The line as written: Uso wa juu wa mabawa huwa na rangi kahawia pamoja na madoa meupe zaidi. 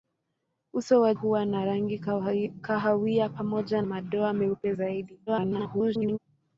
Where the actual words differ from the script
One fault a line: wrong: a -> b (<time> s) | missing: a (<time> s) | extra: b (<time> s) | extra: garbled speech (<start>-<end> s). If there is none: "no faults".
missing: juu wa mabawa (1.1 s)
missing: na (3.8 s)
extra: garbled speech (5.3-6.2 s)